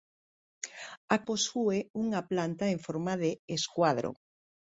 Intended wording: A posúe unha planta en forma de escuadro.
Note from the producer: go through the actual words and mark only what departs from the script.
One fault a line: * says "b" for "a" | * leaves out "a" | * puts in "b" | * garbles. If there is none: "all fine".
all fine